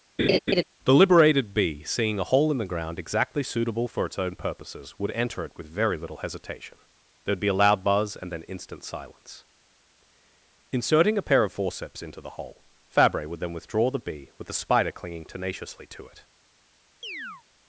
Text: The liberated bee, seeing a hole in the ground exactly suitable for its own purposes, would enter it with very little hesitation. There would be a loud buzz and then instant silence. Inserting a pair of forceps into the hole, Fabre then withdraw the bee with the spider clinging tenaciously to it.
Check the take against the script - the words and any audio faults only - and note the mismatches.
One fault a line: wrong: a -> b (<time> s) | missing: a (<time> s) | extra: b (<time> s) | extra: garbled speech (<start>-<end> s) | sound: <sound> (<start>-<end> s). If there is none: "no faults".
sound: laugh (0.2-0.6 s)
extra: would (13.3 s)
sound: chirp (17.0-17.4 s)